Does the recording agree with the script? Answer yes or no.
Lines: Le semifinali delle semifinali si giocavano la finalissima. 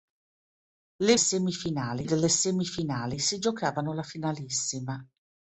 yes